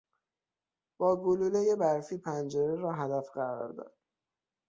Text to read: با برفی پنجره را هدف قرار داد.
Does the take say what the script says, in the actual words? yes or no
no